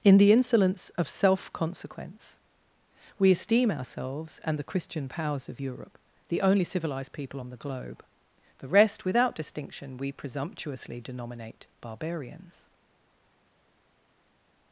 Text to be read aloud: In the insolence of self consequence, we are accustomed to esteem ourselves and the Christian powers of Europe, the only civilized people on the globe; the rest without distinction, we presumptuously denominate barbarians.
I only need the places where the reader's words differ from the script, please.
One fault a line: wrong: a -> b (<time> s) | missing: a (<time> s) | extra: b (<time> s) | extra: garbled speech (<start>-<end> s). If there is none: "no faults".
missing: are accustomed to (3.3 s)